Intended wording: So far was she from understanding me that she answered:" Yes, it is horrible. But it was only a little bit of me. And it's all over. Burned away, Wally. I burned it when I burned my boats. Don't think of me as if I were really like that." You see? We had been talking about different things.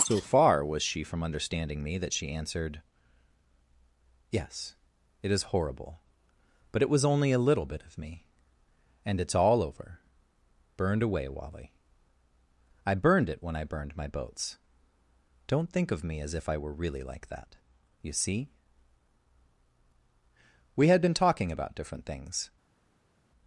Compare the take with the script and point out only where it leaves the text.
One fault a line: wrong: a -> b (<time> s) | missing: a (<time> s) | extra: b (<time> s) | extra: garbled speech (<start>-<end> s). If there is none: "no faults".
no faults